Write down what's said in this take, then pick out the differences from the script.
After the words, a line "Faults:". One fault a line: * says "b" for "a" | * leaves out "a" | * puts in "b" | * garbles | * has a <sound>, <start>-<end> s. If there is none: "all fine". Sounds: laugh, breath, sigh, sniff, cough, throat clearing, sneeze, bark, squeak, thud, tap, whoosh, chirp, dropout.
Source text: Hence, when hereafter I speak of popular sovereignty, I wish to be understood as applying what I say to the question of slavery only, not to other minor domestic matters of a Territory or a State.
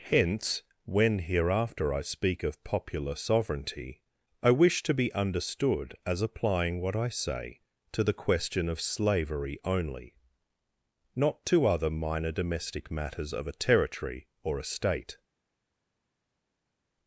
Hence, when hereafter I speak of popular sovereignty, I wish to be understood as applying what I say to the question of slavery only, not to other minor domestic matters of a Territory or a State.
Faults:
all fine